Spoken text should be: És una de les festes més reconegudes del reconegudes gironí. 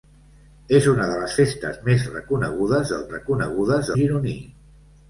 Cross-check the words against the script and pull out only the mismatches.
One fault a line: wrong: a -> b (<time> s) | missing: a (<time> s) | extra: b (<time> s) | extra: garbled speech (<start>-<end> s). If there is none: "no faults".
no faults